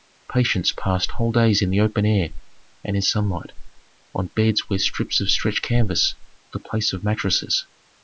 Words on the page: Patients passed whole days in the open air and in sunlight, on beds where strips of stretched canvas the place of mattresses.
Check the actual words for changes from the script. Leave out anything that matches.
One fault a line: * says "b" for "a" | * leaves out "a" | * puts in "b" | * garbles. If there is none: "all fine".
all fine